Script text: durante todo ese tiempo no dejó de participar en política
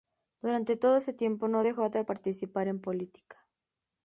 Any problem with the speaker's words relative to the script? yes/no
no